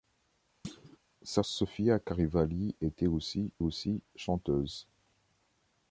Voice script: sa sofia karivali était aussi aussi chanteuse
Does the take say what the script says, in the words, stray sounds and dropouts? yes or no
no